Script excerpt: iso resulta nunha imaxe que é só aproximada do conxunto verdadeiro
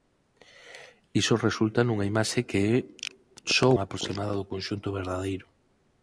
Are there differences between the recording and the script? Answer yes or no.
no